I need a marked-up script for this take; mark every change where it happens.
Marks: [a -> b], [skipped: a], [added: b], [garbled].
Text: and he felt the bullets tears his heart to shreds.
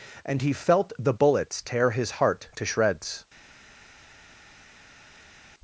and he felt the bullets [tears -> tear] his heart to shreds.